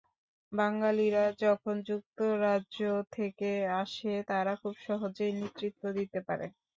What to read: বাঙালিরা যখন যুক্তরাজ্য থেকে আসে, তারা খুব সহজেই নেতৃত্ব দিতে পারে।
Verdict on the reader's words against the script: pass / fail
pass